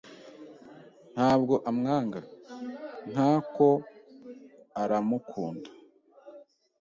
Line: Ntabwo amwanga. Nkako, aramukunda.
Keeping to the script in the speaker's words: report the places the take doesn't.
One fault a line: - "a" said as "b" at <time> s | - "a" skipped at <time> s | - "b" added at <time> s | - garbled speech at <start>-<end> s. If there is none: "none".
none